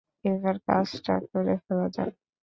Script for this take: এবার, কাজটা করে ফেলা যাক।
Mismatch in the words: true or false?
false